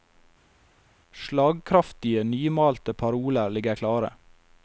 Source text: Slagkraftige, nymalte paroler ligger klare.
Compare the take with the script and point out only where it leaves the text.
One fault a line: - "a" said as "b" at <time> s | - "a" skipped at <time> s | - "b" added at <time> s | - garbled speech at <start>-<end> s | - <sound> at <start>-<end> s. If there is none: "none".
none